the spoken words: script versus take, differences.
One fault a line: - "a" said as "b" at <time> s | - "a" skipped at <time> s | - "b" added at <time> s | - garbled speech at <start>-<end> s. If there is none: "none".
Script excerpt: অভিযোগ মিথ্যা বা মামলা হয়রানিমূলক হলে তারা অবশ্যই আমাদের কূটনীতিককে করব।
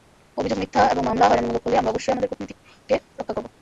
- "বা" said as "এবং" at 0.9 s
- "তারা" said as "আমরা" at 1.8 s
- "রক্ষা" added at 3.2 s